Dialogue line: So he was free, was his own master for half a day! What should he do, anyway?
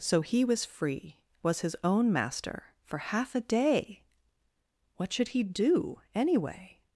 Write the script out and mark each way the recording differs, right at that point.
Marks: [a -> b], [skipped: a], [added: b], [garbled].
So he was free, was his own master for half a day! What should he do, anyway?